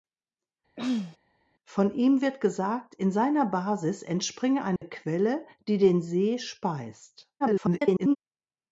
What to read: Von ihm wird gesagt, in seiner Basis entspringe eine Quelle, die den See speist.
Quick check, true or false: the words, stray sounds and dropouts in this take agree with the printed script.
false